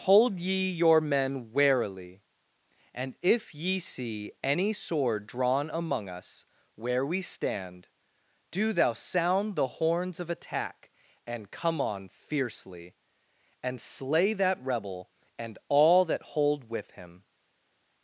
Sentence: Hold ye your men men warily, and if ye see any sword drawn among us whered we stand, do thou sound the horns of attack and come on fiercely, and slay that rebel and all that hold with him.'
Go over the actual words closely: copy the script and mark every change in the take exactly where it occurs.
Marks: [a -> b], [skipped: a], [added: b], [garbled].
Hold ye your men [skipped: men] warily, and if ye see any sword drawn among us [whered -> where] we stand, do thou sound the horns of attack and come on fiercely, and slay that rebel and all that hold with him.'